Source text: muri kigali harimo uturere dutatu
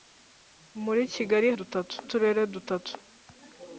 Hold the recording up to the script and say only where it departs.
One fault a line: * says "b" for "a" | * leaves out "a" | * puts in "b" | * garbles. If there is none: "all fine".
* says "dutatu" for "harimo"